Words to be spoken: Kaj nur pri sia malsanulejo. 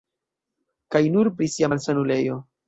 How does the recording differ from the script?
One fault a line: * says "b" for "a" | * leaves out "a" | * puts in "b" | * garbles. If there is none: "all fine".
all fine